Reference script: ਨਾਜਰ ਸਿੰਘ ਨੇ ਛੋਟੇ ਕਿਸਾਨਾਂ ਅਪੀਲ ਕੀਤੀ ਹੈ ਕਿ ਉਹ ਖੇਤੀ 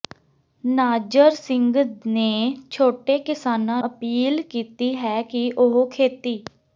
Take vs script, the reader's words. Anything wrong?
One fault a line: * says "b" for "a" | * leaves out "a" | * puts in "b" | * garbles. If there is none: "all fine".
all fine